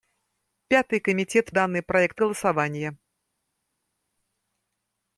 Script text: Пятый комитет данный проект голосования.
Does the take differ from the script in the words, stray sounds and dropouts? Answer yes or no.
no